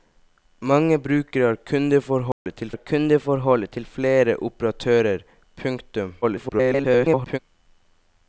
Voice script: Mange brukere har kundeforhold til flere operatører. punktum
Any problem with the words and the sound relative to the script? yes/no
yes